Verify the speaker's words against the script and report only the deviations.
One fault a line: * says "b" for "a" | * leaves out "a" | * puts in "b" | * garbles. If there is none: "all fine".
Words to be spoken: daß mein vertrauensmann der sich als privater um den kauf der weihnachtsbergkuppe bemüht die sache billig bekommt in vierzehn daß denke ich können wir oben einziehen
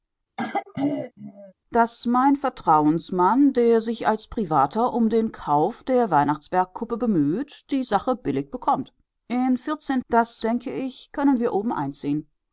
all fine